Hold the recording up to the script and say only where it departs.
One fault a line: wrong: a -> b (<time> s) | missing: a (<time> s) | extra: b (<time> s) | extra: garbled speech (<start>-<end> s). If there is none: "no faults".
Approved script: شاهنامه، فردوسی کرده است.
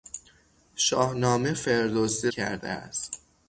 no faults